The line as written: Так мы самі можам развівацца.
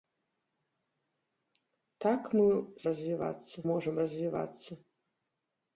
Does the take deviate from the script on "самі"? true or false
true